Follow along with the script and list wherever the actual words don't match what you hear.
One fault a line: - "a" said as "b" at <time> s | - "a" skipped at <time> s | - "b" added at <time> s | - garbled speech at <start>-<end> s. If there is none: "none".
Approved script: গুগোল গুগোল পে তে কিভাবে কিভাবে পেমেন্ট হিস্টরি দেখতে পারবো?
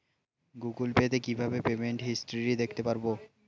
- "গুগোল" skipped at 0.9 s
- "কিভাবে" skipped at 1.6 s